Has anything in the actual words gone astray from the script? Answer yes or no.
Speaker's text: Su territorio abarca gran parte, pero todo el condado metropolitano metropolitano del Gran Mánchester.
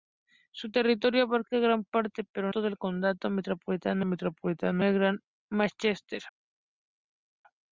no